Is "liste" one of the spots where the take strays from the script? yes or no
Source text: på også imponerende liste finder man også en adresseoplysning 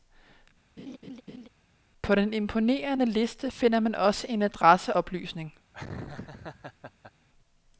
no